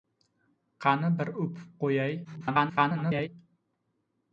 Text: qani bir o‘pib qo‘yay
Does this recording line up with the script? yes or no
no